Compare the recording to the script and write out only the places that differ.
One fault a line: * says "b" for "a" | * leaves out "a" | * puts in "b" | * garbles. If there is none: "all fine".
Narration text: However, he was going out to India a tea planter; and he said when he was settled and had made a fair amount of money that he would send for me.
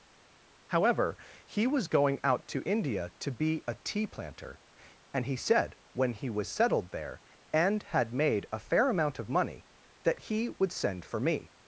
* puts in "to be"
* puts in "there"